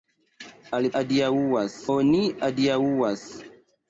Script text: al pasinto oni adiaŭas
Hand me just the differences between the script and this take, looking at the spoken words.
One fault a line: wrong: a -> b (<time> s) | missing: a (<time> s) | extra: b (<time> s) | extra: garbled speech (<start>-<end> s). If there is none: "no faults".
wrong: pasinto -> adiaŭas (1.0 s)